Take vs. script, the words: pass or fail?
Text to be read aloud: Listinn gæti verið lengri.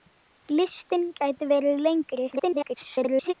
fail